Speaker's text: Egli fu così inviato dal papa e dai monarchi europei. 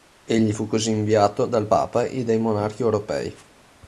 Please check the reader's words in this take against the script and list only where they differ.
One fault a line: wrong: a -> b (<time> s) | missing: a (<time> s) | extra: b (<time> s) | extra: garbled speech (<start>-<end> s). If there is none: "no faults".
no faults